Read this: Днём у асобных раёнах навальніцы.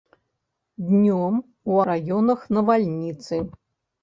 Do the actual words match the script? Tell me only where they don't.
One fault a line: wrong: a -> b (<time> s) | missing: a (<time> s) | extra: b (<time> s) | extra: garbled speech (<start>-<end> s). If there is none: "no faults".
missing: асобных (1.8 s)